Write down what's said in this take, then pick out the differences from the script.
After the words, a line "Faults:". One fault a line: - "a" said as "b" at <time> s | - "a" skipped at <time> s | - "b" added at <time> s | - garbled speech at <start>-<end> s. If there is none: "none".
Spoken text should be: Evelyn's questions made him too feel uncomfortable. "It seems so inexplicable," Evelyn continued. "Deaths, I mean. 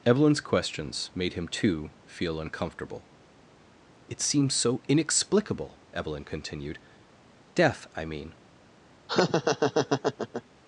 Evelyn's questions made him too feel uncomfortable. "It seems so inexplicable," Evelyn continued. "Death, I mean.
Faults:
- "Deaths" said as "Death" at 7.5 s